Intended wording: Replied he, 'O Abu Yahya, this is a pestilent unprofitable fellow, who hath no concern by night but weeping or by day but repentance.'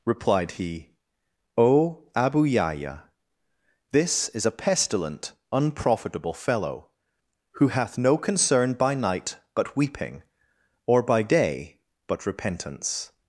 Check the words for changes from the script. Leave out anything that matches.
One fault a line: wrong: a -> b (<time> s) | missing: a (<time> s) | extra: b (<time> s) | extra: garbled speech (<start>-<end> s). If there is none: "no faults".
no faults